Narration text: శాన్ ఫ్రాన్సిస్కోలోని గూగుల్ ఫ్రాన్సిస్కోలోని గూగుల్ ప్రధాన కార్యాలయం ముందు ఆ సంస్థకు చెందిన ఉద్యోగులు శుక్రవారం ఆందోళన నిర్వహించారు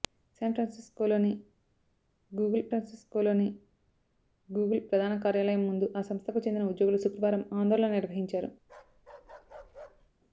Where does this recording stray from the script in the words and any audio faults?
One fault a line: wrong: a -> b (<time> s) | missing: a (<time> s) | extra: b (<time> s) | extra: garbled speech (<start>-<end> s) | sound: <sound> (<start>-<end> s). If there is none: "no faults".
sound: bark (8.6-10.1 s)